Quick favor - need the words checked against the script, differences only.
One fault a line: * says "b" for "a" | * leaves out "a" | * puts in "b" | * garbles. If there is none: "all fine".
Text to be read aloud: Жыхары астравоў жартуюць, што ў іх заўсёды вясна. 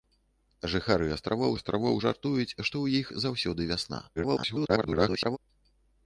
* puts in "астравоў"
* garbles